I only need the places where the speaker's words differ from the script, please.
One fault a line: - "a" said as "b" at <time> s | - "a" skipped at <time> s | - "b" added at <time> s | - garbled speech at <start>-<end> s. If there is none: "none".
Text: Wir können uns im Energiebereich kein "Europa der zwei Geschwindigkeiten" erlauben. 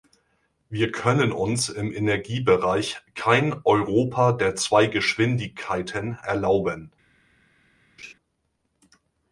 none